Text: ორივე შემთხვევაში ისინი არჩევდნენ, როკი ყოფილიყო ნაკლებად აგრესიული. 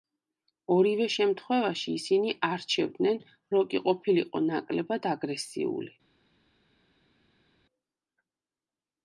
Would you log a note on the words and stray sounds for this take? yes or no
no